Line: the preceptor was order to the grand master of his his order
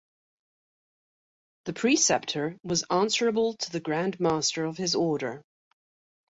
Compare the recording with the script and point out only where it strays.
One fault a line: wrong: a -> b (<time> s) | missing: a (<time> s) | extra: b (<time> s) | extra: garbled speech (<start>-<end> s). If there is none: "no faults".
wrong: order -> answerable (2.9 s)
missing: his (4.9 s)